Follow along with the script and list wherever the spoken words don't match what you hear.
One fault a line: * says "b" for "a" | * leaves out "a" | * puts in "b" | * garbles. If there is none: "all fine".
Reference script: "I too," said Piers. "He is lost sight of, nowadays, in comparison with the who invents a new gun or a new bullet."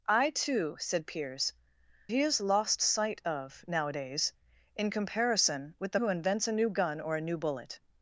all fine